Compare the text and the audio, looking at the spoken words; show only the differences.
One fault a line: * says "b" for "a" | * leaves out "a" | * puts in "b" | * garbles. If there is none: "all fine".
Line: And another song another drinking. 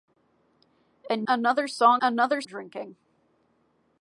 all fine